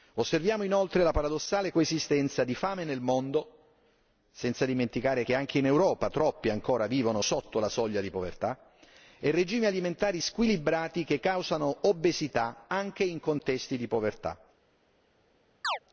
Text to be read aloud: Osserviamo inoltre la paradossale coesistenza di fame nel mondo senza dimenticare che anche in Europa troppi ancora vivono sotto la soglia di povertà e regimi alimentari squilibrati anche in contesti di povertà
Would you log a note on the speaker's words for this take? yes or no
yes